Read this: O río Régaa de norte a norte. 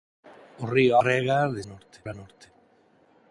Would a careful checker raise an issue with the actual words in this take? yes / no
no